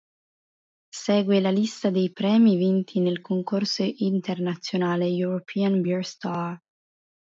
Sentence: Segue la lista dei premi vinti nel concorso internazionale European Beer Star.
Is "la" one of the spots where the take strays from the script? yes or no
no